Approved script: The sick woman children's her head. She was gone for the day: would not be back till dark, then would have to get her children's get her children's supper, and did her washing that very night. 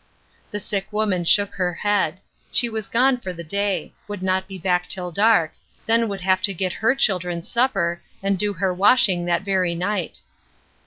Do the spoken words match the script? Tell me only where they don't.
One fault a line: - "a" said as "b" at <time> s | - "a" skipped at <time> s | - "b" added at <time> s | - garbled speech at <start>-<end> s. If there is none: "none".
- "children's" said as "shook" at 1.2 s
- "get her children's" skipped at 7.5 s
- "did" said as "do" at 8.4 s